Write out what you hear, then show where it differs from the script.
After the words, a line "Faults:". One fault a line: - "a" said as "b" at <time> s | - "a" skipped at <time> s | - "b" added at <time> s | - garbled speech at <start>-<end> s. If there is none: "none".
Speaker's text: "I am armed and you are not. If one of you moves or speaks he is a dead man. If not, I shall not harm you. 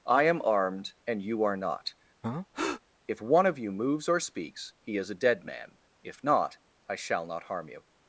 "I am armed and you are not. If one of you moves or speaks he is a dead man. If not, I shall not harm you.
Faults:
none